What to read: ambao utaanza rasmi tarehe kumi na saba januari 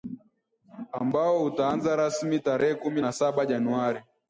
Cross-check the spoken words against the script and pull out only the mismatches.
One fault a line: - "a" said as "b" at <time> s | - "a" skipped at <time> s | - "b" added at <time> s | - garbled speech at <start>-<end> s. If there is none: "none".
none